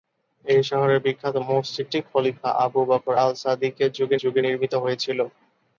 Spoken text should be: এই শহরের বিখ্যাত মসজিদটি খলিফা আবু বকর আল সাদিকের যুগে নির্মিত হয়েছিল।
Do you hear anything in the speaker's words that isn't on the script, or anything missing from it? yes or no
yes